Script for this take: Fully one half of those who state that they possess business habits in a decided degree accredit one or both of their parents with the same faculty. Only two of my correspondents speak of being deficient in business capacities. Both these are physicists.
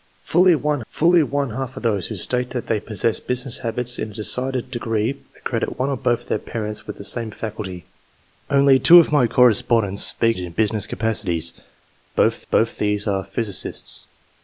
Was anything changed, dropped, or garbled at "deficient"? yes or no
yes